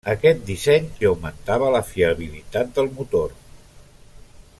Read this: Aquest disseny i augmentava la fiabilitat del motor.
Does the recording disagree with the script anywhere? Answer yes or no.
no